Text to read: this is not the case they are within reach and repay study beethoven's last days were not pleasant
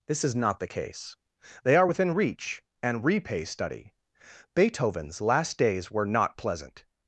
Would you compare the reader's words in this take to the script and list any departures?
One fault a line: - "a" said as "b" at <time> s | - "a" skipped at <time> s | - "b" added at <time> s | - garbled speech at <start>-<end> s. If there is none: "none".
none